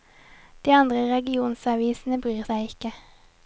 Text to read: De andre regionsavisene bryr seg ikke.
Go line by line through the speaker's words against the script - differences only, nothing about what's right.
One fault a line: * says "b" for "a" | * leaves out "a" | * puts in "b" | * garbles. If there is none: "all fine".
all fine